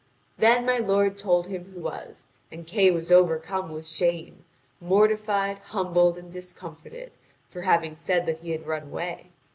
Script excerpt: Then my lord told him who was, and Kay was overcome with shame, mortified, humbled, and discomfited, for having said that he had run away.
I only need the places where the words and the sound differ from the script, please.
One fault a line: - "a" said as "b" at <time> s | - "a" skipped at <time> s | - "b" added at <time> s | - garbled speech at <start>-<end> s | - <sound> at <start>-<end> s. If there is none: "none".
none